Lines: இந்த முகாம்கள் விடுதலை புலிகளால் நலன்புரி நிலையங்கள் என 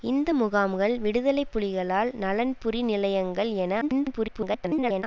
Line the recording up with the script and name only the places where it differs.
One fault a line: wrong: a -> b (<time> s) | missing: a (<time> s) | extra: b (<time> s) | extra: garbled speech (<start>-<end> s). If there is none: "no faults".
extra: garbled speech (3.8-5.0 s)